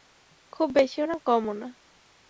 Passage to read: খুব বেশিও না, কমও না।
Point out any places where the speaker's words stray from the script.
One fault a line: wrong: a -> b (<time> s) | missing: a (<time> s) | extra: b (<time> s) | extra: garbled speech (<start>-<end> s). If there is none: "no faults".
no faults